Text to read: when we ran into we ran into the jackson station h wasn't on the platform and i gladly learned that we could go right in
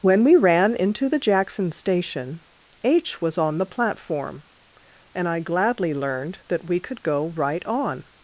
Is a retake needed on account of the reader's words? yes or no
yes